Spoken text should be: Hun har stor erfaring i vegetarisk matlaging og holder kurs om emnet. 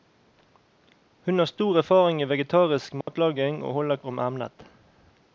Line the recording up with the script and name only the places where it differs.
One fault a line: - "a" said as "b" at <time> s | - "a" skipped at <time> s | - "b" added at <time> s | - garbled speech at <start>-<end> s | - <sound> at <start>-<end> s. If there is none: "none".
- dropout at 3.0-3.1 s
- "kurs" skipped at 4.0 s